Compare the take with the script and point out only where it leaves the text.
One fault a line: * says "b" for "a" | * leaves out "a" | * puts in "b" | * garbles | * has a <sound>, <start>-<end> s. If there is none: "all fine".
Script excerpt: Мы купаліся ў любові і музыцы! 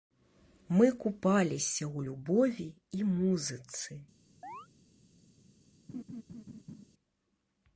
* has a chirp, 4.4-4.7 s
* has a laugh, 5.9-6.9 s